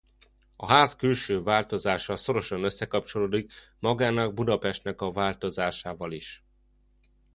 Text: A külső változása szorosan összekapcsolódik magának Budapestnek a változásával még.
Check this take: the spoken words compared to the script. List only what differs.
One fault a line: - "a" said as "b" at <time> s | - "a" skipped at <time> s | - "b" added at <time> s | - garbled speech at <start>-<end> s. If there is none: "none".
- "ház" added at 0.6 s
- "még" said as "is" at 6.1 s